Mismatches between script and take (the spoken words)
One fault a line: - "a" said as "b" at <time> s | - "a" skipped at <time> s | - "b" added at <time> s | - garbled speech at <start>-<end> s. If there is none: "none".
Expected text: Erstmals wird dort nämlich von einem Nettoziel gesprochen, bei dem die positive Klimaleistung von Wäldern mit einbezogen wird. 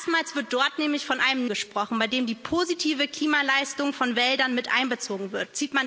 - "Nettoziel" skipped at 1.4 s